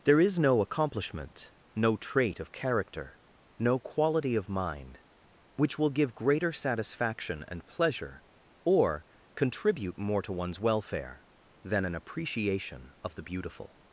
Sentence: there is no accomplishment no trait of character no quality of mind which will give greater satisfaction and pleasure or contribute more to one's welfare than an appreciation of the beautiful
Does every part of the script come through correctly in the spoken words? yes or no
yes